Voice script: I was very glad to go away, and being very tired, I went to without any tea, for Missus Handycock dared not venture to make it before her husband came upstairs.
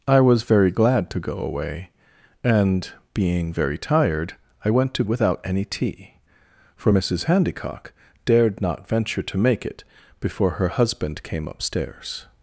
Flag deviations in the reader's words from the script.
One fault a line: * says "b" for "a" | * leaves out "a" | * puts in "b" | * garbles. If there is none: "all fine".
all fine